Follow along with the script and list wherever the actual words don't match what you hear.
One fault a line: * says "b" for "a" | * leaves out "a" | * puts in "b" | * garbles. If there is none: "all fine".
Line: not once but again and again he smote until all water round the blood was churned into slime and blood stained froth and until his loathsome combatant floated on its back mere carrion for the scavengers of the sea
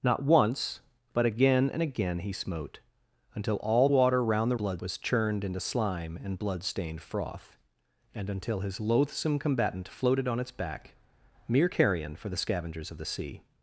all fine